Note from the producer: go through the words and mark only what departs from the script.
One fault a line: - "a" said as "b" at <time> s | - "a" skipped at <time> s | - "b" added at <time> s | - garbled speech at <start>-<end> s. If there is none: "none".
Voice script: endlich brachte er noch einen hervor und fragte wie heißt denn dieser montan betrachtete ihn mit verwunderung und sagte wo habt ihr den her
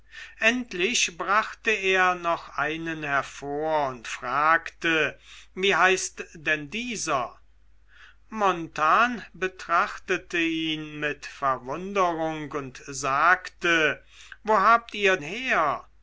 - "den" skipped at 15.2 s